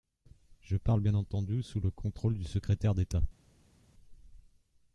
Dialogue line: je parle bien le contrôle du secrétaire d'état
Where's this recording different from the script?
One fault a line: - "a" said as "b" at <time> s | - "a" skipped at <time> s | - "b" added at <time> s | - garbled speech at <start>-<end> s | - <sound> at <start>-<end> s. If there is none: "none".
- "entendu sous" added at 1.1 s